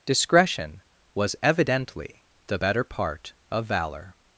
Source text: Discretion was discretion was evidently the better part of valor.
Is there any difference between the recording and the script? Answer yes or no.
yes